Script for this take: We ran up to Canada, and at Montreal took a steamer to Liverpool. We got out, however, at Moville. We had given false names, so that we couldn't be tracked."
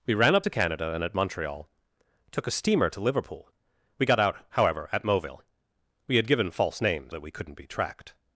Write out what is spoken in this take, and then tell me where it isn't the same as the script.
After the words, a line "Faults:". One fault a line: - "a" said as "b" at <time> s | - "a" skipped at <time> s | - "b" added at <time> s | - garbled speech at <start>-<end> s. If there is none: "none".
We ran up to Canada, and at Montreal took a steamer to Liverpool. We got out, however, at Moville. We had given false names, that we couldn't be tracked."
Faults:
- "so" skipped at 7.1 s